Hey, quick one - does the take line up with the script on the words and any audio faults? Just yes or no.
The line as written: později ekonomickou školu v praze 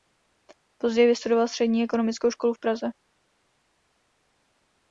no